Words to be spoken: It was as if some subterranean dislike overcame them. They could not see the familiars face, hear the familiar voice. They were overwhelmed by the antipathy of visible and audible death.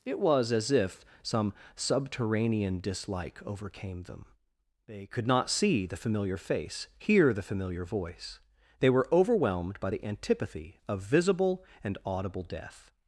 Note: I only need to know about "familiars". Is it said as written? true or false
false